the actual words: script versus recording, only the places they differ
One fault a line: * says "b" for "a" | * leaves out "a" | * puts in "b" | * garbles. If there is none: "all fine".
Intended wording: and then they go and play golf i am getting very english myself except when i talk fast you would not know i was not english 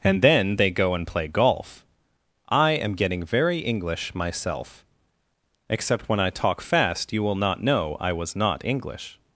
* says "will" for "would"